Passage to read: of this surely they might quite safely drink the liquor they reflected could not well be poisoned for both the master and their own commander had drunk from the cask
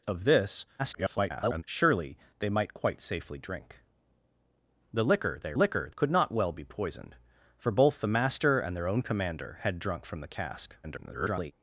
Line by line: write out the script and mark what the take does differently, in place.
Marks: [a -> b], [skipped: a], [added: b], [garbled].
of this [garbled] surely they might quite safely drink the liquor they [reflected -> liquor] could not well be poisoned for both the master and their own commander had drunk from the cask [garbled]